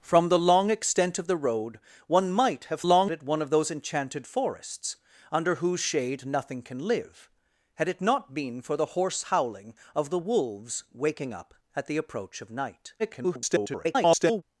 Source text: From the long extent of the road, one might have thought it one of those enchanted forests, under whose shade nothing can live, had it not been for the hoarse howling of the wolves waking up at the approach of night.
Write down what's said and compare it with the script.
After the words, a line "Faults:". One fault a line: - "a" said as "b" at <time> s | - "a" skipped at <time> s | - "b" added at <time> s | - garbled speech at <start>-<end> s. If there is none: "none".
From the long extent of the road, one might have long it one of those enchanted forests, under whose shade nothing can live, had it not been for the hoarse howling of the wolves waking up at the approach of night. [garbled]
Faults:
- "thought" said as "long" at 2.8 s
- garbled speech at 13.0-14.4 s